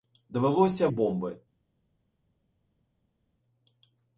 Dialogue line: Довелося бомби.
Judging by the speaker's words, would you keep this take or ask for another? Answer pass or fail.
pass